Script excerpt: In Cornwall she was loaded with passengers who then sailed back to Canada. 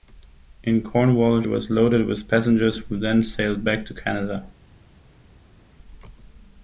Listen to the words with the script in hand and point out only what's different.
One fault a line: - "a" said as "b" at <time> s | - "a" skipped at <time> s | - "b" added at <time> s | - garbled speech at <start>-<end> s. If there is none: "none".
- "she" skipped at 1.4 s